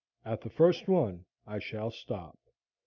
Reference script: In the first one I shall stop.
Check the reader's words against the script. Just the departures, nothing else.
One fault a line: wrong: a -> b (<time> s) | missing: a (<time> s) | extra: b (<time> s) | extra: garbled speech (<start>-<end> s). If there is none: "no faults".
wrong: In -> At (0.2 s)